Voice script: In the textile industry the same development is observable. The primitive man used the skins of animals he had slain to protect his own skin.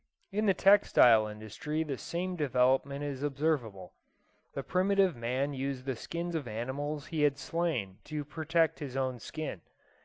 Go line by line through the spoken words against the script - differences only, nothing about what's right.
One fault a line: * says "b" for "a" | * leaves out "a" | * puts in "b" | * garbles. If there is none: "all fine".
all fine